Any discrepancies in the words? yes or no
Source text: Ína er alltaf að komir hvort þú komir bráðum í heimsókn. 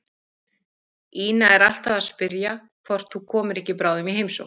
yes